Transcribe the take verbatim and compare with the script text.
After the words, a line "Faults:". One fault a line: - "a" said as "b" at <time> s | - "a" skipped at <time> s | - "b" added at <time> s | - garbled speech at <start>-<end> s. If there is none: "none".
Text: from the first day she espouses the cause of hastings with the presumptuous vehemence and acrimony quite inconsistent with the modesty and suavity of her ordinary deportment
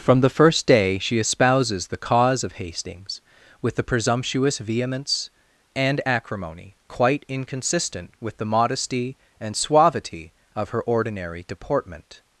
from the first day she espouses the cause of hastings with the presumptuous vehemence and acrimony quite inconsistent with the modesty and suavity of her ordinary deportment
Faults:
none